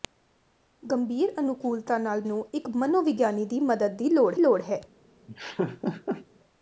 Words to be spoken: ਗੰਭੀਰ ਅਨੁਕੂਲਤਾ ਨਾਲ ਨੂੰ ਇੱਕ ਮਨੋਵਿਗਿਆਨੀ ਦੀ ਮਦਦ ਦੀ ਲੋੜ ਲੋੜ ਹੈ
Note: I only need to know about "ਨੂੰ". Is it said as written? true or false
true